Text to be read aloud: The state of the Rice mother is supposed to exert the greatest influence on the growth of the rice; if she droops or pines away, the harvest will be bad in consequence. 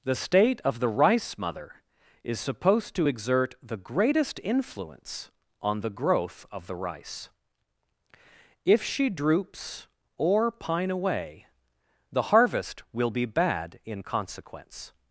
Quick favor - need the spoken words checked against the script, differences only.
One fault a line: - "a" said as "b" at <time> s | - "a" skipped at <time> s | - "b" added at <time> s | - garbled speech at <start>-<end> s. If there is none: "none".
- "pines" said as "pine" at 10.5 s